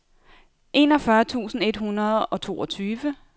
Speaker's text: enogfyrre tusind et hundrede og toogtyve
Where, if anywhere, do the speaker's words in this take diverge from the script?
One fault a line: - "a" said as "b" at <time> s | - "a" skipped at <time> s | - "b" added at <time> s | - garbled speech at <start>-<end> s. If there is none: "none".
none